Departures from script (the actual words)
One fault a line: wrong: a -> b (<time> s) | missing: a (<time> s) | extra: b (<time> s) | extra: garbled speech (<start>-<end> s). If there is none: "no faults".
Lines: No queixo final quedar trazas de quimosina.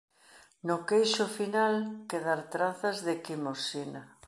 no faults